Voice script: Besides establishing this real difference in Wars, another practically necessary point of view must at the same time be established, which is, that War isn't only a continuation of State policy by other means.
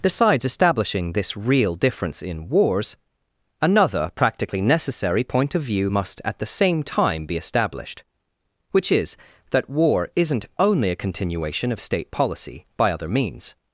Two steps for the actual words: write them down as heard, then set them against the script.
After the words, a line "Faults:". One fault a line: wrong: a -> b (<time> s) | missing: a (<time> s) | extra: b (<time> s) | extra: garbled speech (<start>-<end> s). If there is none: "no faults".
Besides establishing this real difference in Wars, another practically necessary point of view must at the same time be established, which is, that War isn't only a continuation of State policy by other means.
Faults:
no faults